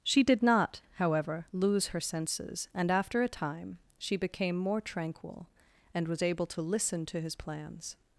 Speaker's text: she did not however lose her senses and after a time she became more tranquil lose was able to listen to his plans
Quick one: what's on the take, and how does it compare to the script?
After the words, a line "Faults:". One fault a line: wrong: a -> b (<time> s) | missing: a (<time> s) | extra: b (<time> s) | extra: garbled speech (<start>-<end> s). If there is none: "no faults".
she did not however lose her senses and after a time she became more tranquil and was able to listen to his plans
Faults:
wrong: lose -> and (5.9 s)